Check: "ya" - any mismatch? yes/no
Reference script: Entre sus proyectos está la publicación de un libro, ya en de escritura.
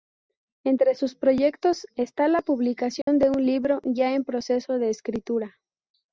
no